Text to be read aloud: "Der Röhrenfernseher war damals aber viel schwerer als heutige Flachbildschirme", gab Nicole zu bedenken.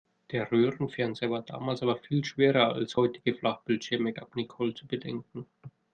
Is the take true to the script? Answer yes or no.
yes